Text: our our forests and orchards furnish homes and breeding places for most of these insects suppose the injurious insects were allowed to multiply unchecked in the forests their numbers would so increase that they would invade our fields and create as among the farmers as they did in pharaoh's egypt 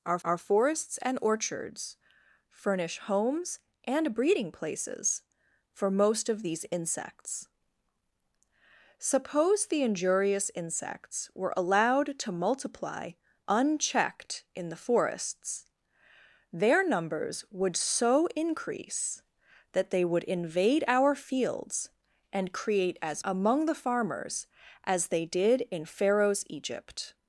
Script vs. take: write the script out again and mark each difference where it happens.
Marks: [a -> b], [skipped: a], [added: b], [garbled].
our our forests and orchards furnish homes and breeding places for most of these insects suppose the injurious insects were allowed to multiply unchecked in the forests their numbers would so increase that they would invade our fields and create as among the farmers as they did in pharaoh's egypt